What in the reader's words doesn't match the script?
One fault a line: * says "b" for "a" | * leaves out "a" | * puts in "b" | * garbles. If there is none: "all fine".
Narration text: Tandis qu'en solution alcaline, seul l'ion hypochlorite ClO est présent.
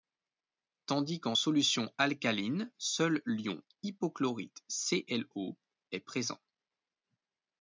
all fine